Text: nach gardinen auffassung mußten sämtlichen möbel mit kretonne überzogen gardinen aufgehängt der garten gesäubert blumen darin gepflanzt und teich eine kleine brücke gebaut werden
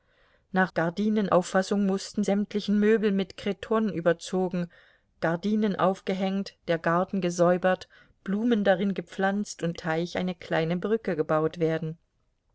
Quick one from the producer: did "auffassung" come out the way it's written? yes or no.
yes